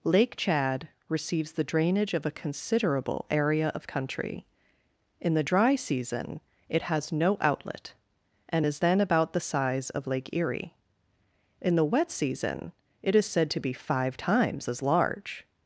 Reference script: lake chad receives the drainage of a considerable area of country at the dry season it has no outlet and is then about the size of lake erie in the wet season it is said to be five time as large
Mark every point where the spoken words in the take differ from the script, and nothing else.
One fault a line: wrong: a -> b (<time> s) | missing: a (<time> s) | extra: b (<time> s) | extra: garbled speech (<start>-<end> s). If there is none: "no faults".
wrong: at -> in (5.2 s)
wrong: time -> times (14.2 s)